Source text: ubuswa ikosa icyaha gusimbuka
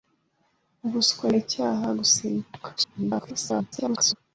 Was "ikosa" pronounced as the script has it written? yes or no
no